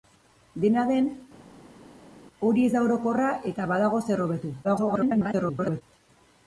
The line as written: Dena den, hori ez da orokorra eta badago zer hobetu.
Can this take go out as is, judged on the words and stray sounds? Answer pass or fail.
fail